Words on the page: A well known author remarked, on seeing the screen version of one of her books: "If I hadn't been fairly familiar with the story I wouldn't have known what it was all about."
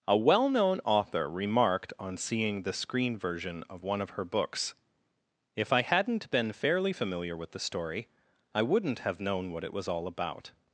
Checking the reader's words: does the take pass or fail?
pass